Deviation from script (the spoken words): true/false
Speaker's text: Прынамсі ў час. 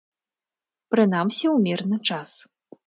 true